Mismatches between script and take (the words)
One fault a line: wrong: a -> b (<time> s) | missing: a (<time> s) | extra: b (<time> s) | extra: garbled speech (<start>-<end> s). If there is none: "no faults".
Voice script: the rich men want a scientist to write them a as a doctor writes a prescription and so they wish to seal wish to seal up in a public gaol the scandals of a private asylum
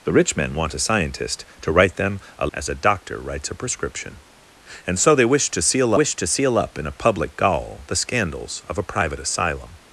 no faults